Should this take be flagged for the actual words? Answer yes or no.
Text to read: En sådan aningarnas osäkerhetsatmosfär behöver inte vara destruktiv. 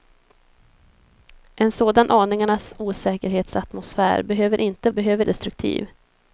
yes